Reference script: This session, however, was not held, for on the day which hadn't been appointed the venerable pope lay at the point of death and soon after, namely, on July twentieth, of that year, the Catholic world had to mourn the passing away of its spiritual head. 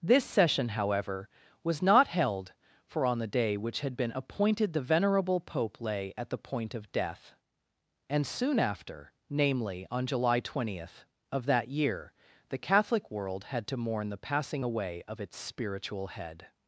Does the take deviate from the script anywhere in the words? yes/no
yes